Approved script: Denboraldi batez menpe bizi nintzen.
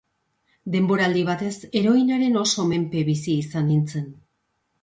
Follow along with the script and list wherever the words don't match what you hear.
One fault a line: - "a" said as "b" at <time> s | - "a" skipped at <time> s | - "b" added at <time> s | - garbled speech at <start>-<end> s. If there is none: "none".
- "heroinaren oso" added at 1.8 s
- "izan" added at 3.5 s